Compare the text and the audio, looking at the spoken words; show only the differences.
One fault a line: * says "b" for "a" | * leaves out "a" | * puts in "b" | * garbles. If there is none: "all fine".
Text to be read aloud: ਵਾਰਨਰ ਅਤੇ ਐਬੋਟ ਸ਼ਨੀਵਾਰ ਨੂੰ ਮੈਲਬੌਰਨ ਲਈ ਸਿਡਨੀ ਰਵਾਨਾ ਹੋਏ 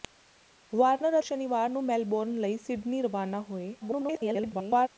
* leaves out "ਅਤੇ ਐਬੋਟ"
* garbles